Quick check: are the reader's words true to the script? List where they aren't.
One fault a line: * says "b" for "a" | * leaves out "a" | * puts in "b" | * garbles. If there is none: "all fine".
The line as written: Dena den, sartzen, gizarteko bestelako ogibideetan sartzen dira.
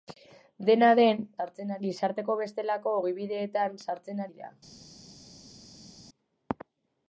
all fine